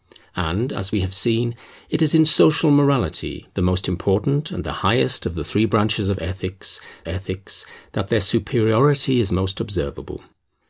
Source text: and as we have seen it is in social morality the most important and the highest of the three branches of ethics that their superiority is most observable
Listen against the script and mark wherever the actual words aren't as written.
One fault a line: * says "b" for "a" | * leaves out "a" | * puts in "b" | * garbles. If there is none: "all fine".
* puts in "ethics"